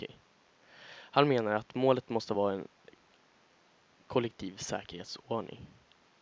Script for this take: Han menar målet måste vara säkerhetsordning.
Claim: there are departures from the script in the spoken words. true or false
true